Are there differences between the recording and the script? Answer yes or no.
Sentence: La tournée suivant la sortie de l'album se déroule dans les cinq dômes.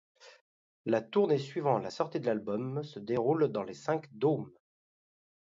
no